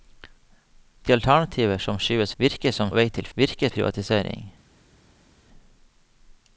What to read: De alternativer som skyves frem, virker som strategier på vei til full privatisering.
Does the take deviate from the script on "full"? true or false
true